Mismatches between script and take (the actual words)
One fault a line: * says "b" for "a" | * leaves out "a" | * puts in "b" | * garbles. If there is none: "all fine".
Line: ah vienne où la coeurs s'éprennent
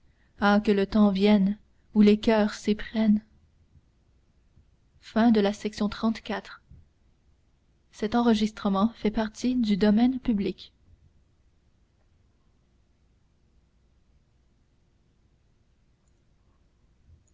* puts in "que le temps"
* says "les" for "la"